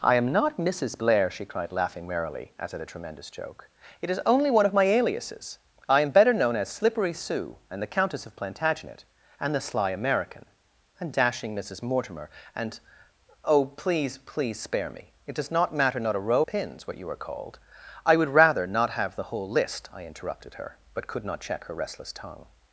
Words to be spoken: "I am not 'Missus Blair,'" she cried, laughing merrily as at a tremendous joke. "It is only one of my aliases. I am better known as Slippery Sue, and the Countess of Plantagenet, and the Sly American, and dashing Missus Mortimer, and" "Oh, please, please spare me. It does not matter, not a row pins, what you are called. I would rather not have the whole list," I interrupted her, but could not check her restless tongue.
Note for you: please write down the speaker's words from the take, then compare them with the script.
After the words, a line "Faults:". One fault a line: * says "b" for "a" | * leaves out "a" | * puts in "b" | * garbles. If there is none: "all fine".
"I am not 'Missus Blair,'" she cried, laughing merrily as at a tremendous joke. "It is only one of my aliases. I am better known as Slippery Sue, and the Countess of Plantagenet, and the Sly American, and dashing Missus Mortimer, and" "Oh, please, please spare me. It does not matter, not a row pins, what you are called. I would rather not have the whole list," I interrupted her, but could not check her restless tongue.
Faults:
all fine